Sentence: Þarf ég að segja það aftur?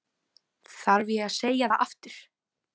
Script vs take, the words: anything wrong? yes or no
no